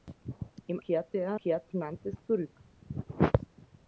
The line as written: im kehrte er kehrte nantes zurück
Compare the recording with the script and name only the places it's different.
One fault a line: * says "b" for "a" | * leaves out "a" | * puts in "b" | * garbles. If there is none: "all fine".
all fine